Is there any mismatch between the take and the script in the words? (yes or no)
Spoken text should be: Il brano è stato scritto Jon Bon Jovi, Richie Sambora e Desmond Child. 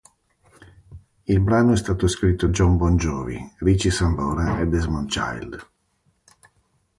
no